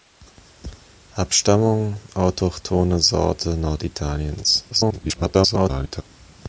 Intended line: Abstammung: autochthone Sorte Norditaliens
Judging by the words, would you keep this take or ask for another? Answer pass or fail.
fail